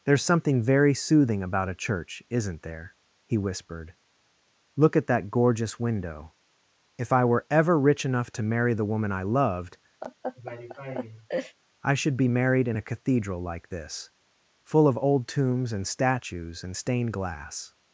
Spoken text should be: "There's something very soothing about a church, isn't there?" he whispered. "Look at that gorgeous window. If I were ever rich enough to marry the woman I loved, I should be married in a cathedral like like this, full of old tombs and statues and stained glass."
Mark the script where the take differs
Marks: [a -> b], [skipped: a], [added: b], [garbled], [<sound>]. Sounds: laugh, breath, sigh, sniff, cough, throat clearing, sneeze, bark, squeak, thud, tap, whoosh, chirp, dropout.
"There's something very soothing about a church, isn't there?" he whispered. "Look at that gorgeous window. If I were ever rich enough to marry the woman I loved, [laugh] I should be married in a cathedral like [skipped: like] this, full of old tombs and statues and stained glass."